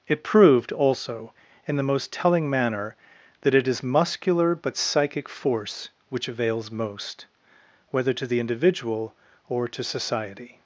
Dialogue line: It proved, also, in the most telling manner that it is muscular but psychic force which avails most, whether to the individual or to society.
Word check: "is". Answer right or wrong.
right